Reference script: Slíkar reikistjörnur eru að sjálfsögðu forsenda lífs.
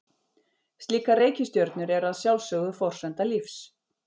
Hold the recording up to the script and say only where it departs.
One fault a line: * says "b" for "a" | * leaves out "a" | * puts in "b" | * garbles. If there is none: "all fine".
all fine